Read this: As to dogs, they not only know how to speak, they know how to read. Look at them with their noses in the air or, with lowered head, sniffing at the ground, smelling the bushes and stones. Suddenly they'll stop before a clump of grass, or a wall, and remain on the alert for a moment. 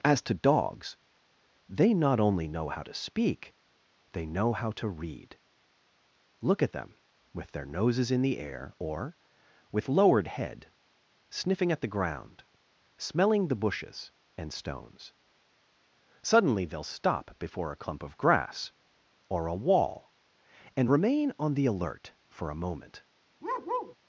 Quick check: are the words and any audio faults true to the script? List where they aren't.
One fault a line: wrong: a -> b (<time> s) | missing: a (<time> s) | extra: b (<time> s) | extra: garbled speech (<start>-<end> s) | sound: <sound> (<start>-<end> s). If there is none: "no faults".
sound: bark (23.4-24.0 s)